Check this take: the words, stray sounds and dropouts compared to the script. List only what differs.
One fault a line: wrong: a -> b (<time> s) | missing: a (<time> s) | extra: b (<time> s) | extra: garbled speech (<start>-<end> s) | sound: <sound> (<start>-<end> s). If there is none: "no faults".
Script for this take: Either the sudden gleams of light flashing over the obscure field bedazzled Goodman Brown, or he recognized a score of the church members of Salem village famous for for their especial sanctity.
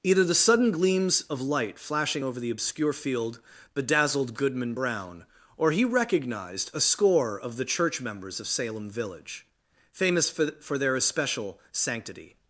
no faults